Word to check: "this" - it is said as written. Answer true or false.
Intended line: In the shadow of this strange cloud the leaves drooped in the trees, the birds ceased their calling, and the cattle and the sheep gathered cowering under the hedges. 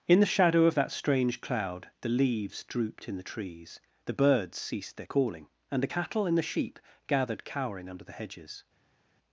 false